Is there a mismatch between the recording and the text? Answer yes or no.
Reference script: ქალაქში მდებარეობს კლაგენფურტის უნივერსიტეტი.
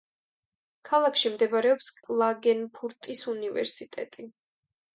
no